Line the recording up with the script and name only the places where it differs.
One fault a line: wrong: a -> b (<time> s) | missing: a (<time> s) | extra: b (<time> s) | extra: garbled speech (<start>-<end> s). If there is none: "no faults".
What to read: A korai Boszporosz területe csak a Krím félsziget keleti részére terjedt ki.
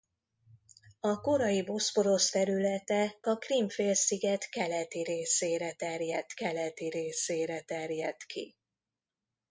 missing: csak (3.2 s)
extra: keleti részére terjedt (6.3 s)